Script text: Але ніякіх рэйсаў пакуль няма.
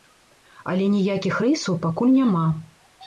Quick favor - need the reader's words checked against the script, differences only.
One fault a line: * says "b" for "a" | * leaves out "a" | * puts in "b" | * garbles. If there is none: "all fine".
all fine